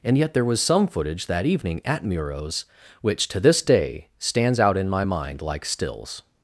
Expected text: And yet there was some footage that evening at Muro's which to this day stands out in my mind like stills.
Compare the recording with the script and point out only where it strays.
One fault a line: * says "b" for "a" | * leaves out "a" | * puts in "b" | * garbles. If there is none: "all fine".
all fine